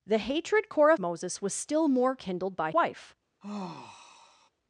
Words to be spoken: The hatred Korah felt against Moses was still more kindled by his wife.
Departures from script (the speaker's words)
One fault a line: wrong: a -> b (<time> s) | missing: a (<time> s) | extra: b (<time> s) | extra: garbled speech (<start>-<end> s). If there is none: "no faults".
missing: felt against (1.0 s)
missing: his (2.7 s)